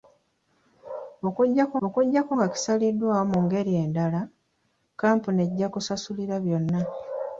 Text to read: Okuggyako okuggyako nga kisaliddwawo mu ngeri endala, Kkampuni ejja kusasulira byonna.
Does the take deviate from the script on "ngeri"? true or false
false